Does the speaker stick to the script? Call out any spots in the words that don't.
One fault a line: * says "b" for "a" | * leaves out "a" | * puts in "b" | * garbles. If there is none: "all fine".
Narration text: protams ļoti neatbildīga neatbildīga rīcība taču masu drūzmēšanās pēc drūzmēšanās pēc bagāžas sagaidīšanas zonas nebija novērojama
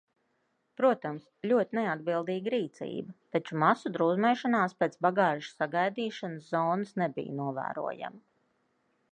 * leaves out "neatbildīga"
* leaves out "drūzmēšanās pēc"